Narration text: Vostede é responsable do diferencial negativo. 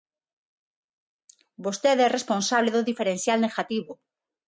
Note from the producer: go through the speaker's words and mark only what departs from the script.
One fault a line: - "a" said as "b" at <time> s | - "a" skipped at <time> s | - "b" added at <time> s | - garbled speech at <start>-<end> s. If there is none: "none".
none